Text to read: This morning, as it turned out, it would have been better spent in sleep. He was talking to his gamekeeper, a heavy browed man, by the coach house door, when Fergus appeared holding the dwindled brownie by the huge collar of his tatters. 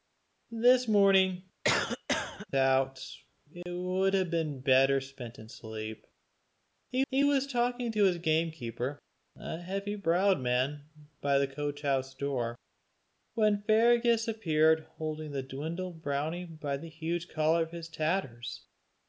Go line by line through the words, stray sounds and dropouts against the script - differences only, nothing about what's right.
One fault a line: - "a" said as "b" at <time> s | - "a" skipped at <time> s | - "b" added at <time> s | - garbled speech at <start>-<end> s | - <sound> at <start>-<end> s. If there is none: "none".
- "as it turned" skipped at 1.4 s
- cough at 1.6-2.5 s
- dropout at 3.6-3.7 s
- "he" added at 7.1 s